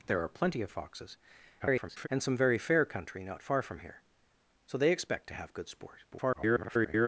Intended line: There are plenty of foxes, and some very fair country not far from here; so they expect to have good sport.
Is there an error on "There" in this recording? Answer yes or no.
no